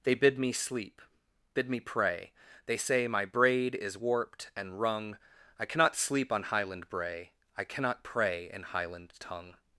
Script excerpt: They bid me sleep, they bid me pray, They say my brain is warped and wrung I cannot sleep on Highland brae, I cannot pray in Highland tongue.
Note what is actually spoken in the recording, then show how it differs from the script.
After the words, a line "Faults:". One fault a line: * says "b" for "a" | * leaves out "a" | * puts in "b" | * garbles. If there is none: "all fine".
They bid me sleep, bid me pray, They say my braid is warped and wrung I cannot sleep on Highland brae, I cannot pray in Highland tongue.
Faults:
* leaves out "they"
* says "braid" for "brain"